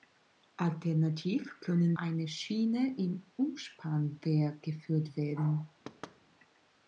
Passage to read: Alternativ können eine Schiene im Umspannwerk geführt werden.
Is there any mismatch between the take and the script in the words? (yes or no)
no